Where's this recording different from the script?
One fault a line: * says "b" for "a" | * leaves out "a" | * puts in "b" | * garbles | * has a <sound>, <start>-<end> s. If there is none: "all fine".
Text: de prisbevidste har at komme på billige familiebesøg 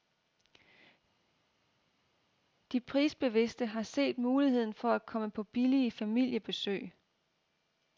* puts in "set muligheden for"